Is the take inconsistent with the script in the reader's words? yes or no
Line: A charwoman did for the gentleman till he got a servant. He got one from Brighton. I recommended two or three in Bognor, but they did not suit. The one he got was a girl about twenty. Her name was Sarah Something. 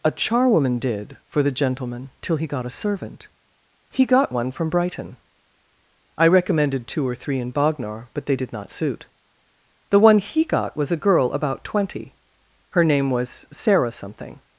no